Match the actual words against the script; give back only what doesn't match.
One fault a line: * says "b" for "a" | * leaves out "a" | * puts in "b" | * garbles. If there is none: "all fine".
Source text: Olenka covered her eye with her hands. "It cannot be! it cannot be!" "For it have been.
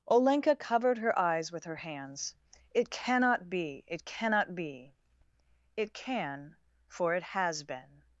* says "eyes" for "eye"
* puts in "It can"
* says "has" for "have"